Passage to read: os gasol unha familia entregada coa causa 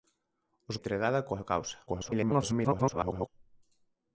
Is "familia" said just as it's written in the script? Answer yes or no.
no